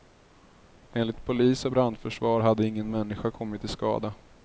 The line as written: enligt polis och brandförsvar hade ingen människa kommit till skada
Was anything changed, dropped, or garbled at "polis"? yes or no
no